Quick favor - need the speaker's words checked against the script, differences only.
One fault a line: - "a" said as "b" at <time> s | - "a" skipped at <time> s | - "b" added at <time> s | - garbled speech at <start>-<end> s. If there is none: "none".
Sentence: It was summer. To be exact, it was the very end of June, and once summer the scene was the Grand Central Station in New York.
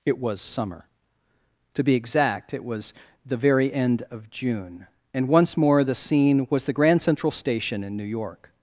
- "summer" said as "more" at 5.6 s